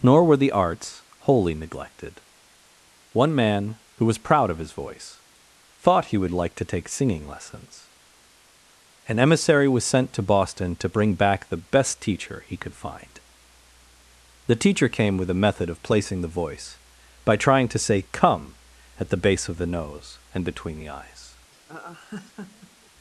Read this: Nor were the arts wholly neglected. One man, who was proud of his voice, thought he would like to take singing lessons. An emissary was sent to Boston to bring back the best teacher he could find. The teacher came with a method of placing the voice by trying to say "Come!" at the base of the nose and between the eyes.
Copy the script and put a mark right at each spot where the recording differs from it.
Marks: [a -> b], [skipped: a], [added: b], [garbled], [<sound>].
Nor were the arts wholly neglected. One man, who was proud of his voice, thought he would like to take singing lessons. An emissary was sent to Boston to bring back the best teacher he could find. The teacher came with a method of placing the voice by trying to say "Come!" at the base of the nose and between the eyes. [laugh]